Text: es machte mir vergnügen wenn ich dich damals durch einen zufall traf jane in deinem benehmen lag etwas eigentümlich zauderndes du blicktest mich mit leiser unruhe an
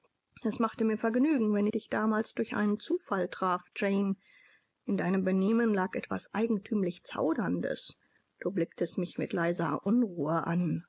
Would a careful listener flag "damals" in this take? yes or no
no